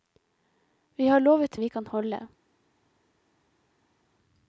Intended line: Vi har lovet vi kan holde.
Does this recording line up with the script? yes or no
yes